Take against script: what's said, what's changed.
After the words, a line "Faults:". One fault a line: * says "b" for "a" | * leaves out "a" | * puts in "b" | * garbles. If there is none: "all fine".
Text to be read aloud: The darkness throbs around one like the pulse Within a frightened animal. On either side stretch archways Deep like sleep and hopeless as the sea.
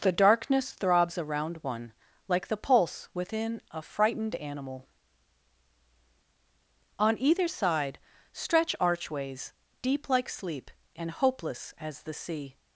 The darkness throbs around one like the pulse Within a frightened animal. On either side stretch archways Deep like sleep and hopeless as the sea.
Faults:
all fine